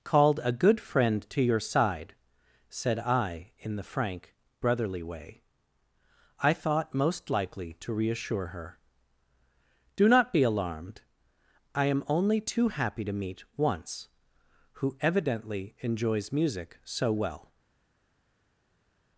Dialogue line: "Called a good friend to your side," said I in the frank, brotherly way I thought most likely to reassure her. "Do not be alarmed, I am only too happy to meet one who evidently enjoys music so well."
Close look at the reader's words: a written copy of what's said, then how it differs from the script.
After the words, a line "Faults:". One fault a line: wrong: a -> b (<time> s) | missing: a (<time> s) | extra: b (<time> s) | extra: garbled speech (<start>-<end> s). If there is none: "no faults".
"Called a good friend to your side," said I in the frank, brotherly way I thought most likely to reassure her. "Do not be alarmed, I am only too happy to meet once who evidently enjoys music so well."
Faults:
wrong: one -> once (13.6 s)